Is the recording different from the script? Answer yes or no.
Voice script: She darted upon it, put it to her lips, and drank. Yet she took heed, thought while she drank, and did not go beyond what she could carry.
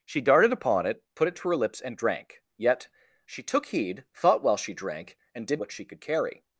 yes